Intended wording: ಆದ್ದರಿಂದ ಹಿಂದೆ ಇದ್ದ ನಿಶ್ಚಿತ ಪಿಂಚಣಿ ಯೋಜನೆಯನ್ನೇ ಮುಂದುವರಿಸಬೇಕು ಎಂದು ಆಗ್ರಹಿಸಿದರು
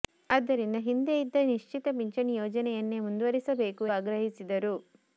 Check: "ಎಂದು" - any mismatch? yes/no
yes